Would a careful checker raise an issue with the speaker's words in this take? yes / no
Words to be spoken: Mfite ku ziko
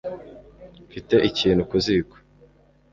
yes